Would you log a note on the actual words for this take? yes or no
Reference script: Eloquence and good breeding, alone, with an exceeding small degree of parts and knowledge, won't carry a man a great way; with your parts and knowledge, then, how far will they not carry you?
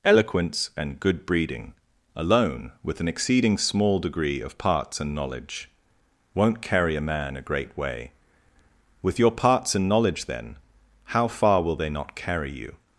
no